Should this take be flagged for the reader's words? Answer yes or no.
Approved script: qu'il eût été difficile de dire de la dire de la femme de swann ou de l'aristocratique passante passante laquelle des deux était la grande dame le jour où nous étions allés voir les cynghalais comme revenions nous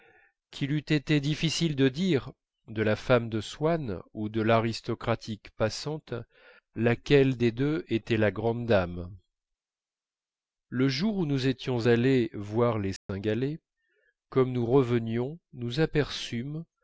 yes